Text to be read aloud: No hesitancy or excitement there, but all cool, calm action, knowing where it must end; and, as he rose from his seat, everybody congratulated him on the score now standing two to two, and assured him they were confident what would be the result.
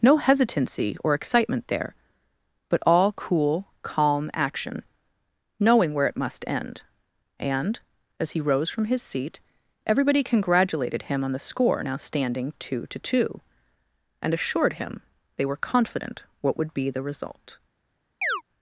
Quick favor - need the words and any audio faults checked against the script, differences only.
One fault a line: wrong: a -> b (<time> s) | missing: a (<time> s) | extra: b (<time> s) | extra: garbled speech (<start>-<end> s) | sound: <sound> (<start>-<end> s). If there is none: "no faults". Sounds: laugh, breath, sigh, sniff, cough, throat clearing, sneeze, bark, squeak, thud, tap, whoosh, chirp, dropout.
sound: chirp (18.2-18.4 s)